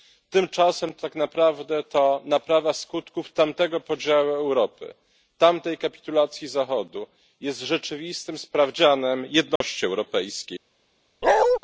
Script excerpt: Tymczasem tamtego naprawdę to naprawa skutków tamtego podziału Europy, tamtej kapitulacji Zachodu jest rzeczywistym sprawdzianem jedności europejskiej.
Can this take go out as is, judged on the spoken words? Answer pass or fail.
fail